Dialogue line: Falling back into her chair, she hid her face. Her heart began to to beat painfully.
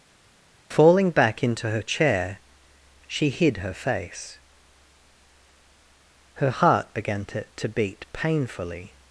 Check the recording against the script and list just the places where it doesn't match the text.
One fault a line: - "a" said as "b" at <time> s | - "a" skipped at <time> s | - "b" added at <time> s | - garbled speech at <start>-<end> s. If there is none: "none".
none